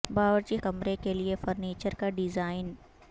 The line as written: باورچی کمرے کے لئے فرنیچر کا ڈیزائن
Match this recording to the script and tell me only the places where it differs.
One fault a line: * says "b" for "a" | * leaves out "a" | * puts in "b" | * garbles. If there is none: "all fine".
all fine